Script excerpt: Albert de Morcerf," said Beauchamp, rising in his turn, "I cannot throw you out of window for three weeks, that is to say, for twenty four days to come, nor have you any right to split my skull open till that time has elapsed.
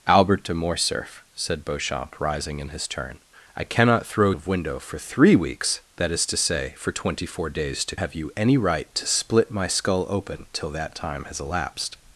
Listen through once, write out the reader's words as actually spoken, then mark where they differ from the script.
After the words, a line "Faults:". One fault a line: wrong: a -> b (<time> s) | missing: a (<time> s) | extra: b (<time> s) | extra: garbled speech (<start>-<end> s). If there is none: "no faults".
Albert de Morcerf," said Beauchamp, rising in his turn, "I cannot throw of window for three weeks, that is to say, for twenty four days to have you any right to split my skull open till that time has elapsed.
Faults:
missing: you out (4.3 s)
missing: come nor (7.9 s)